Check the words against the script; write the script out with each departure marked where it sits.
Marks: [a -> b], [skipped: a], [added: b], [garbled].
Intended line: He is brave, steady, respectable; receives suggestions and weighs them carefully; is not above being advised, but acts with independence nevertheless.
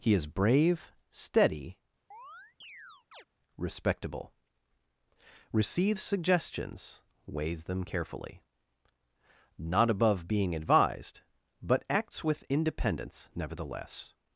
He is brave, steady, respectable; receives suggestions [skipped: and] weighs them carefully; [skipped: is] not above being advised, but acts with independence nevertheless.